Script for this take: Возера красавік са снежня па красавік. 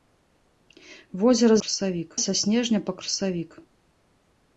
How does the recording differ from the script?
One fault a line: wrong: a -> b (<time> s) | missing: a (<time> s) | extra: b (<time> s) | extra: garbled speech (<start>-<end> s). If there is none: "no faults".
no faults